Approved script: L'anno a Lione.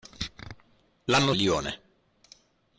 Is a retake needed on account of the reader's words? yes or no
no